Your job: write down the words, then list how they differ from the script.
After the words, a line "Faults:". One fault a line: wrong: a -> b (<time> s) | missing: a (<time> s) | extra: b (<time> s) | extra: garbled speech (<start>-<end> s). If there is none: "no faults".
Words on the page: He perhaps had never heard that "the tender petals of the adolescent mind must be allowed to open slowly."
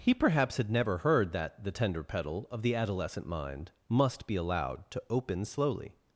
He perhaps had never heard that "the tender petal of the adolescent mind must be allowed to open slowly."
Faults:
wrong: petals -> petal (2.0 s)